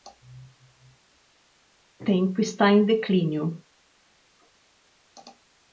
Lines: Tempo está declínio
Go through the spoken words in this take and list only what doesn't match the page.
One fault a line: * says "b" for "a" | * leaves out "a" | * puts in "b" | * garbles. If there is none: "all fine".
* puts in "em"